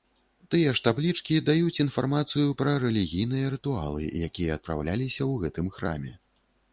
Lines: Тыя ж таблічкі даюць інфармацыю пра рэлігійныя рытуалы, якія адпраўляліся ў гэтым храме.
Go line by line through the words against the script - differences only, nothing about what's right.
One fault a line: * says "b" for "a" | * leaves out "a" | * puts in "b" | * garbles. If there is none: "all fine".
all fine